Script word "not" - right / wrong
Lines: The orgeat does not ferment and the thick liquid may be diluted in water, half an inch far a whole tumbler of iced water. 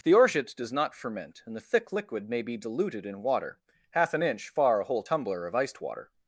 right